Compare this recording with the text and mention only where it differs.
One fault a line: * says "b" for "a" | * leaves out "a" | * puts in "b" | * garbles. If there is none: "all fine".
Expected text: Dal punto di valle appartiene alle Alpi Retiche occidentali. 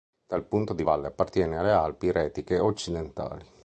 all fine